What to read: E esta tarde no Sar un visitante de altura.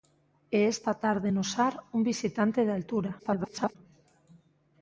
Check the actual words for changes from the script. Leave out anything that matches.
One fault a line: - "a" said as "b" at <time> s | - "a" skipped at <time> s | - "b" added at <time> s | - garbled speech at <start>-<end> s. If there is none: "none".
- garbled speech at 3.2-3.8 s